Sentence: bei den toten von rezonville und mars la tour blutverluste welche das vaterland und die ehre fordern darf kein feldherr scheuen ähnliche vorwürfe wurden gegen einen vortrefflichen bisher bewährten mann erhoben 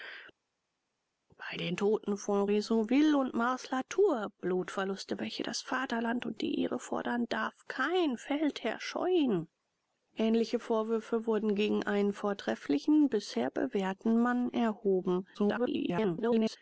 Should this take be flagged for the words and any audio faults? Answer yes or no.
yes